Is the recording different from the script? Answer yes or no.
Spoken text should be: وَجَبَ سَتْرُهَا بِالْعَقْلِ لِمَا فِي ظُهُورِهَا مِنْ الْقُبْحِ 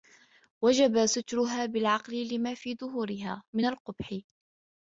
no